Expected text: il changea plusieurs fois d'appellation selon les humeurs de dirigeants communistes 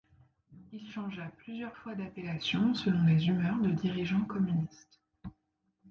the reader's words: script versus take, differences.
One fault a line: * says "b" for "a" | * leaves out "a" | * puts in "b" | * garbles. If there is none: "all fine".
all fine